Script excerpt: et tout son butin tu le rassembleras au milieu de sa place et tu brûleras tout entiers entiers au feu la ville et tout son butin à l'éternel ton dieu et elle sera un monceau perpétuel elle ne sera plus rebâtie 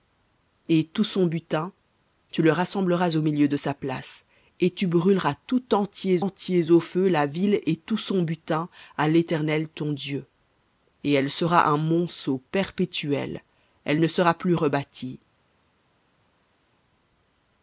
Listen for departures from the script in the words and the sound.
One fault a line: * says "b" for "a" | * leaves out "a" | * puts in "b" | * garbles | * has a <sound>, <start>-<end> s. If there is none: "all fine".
all fine